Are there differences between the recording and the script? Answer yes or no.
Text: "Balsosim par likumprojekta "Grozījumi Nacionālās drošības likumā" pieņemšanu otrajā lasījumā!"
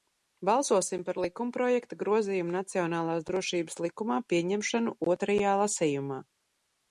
no